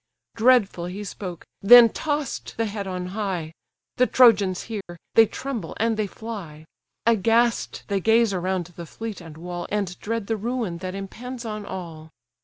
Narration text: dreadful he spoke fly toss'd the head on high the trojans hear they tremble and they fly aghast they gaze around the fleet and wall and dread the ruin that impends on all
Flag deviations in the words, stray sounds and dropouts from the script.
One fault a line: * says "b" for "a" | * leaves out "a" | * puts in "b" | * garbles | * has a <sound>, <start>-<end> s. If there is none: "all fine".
* says "then" for "fly"
* has a dropout, 4.8-4.9 s